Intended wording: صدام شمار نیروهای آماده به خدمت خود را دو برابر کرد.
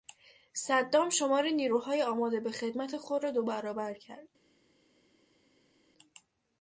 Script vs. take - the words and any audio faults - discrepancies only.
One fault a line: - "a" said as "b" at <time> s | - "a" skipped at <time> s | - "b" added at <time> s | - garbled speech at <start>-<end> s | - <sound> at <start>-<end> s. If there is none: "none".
none